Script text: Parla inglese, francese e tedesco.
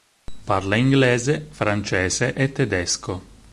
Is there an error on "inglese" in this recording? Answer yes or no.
no